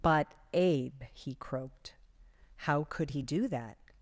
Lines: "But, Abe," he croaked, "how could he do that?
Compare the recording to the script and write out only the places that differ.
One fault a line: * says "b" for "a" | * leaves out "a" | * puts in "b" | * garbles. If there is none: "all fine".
all fine